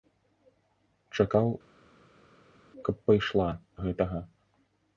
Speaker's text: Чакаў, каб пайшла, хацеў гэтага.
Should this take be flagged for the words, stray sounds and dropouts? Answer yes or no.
yes